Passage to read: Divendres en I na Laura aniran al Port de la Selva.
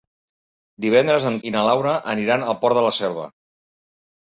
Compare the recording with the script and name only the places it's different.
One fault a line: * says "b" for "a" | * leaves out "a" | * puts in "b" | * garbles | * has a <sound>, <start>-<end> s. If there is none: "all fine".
all fine